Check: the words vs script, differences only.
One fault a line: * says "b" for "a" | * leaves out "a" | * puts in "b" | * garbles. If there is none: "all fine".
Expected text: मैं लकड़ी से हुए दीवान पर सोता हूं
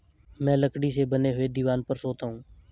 * puts in "बने"